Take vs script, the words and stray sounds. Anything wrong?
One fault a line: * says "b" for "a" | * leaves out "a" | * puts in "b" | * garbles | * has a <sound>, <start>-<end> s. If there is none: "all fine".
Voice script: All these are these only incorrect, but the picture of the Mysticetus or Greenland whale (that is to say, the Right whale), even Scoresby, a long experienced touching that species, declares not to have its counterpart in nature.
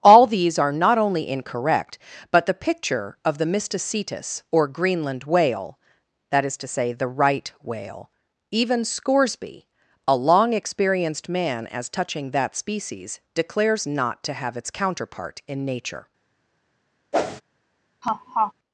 * says "not" for "these"
* puts in "man as"
* has a whoosh, 17.1-17.4 s
* has a laugh, 18.0-18.5 s